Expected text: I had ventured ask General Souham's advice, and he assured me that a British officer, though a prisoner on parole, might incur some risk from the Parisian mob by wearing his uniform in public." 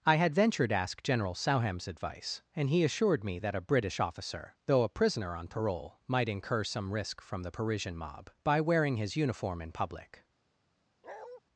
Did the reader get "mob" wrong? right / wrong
right